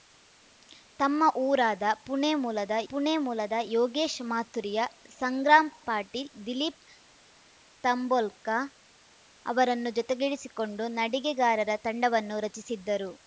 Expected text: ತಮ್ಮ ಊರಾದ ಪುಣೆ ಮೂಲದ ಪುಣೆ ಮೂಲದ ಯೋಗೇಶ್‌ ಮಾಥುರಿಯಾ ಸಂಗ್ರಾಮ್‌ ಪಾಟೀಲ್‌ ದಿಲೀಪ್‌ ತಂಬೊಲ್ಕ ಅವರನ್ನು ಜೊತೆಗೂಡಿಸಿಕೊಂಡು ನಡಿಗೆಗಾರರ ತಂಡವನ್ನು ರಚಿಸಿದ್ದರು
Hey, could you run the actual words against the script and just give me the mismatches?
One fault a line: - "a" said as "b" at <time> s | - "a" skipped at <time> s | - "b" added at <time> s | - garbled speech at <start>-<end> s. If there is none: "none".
none